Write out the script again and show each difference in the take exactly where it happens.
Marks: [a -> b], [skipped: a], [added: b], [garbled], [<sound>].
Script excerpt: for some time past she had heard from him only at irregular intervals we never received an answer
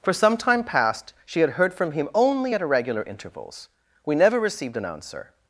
for some time past she had heard from him only at irregular intervals we never received an answer